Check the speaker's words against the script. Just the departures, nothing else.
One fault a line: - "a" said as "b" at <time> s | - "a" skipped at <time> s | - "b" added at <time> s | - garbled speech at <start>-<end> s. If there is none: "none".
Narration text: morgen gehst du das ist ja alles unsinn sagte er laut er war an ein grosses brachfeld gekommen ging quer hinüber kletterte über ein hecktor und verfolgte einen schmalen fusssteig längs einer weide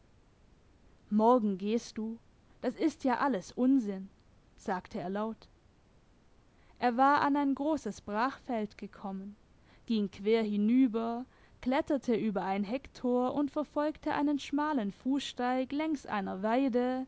none